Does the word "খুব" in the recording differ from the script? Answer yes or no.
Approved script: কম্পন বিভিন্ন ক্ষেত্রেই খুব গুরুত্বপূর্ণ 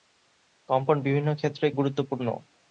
yes